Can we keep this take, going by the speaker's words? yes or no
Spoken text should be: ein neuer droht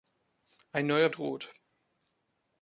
yes